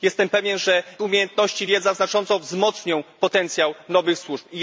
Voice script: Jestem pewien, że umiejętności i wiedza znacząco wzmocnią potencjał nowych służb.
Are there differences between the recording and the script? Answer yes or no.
no